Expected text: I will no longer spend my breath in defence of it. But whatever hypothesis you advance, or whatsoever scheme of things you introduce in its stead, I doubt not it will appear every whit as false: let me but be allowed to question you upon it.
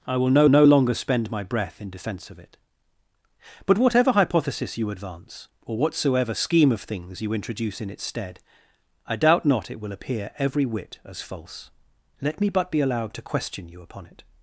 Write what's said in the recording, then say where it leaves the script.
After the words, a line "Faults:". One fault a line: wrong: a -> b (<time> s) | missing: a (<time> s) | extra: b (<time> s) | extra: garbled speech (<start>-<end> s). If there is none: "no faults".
I will no no longer spend my breath in defence of it. But whatever hypothesis you advance, or whatsoever scheme of things you introduce in its stead, I doubt not it will appear every whit as false: let me but be allowed to question you upon it.
Faults:
extra: no (0.5 s)